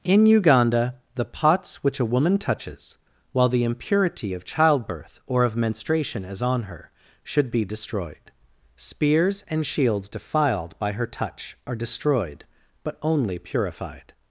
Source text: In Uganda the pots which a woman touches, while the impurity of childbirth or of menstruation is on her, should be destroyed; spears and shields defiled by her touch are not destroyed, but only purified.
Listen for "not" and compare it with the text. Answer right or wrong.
wrong